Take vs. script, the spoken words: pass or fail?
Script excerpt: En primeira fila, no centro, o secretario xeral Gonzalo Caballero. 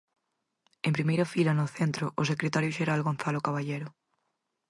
pass